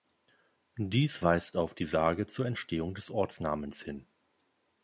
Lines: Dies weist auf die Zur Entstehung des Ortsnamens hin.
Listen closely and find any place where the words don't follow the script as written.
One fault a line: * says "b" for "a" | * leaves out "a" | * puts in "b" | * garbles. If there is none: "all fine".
* puts in "Sage"